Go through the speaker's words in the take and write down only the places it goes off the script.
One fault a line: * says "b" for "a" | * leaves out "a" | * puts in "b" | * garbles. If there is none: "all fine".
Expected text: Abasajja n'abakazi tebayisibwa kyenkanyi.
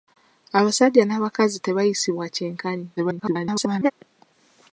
* garbles